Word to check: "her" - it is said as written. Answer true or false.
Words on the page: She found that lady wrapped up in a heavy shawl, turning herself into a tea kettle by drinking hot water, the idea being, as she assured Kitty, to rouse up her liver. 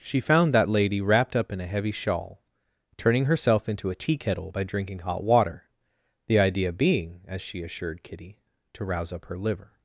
true